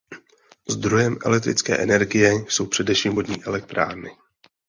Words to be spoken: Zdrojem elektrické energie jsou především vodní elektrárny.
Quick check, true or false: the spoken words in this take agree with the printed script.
true